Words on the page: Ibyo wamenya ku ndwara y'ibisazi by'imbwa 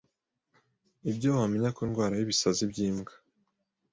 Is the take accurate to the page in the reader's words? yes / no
yes